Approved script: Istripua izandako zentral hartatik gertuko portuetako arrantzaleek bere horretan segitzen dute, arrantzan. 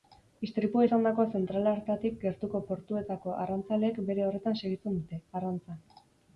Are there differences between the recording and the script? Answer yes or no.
no